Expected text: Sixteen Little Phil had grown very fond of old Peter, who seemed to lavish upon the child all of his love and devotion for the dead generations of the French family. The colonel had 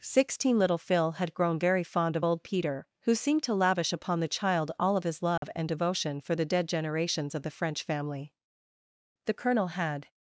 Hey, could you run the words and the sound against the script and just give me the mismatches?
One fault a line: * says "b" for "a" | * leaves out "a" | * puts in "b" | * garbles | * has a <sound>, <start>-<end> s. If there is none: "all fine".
* has a dropout, 5.4-5.4 s